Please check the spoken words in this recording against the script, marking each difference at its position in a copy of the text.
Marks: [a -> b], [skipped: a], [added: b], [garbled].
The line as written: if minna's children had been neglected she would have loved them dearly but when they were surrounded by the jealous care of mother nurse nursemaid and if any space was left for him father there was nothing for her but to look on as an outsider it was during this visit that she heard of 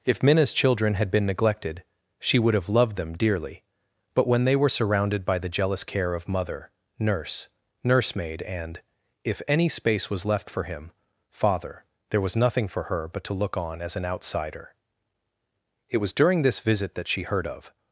if minna's children had been neglected she would have loved them dearly but when they were surrounded by the jealous care of mother nurse nursemaid and if any space was left for him father there was nothing for her but to look on as an outsider it was during this visit that she heard of